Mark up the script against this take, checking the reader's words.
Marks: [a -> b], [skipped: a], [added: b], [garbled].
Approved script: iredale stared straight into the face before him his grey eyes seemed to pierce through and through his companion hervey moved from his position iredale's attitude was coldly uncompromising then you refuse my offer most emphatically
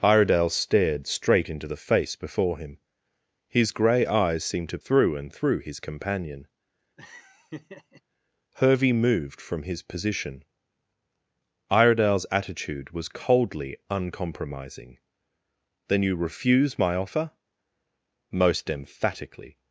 iredale stared straight into the face before him his grey eyes seemed to [skipped: pierce] through and through his companion hervey moved from his position iredale's attitude was coldly uncompromising then you refuse my offer most emphatically